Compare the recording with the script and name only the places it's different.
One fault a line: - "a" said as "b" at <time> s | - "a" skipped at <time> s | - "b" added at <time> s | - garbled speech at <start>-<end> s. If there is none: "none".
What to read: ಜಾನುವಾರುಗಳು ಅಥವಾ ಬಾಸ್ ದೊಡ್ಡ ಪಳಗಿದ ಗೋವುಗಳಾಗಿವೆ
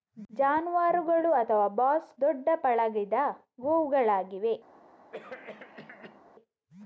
none